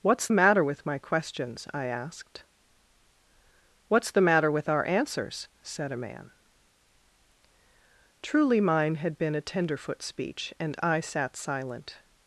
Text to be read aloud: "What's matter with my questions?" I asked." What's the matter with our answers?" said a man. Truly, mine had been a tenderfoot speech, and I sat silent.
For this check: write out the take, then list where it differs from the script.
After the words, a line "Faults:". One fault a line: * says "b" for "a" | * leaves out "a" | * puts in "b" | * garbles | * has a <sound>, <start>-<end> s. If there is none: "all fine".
"What's matter with my questions?" I asked." What's the matter with our answers?" said a man. Truly, mine had been a tenderfoot speech, and I sat silent.
Faults:
all fine